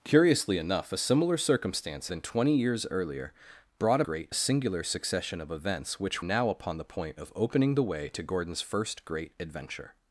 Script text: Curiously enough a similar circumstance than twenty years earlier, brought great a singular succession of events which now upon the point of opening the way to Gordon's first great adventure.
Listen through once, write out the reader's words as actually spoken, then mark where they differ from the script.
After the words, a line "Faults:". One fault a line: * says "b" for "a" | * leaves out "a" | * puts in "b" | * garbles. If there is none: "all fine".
Curiously enough a similar circumstance than twenty years earlier, brought great a singular succession of events which now upon the point of opening the way to Gordon's first great adventure.
Faults:
all fine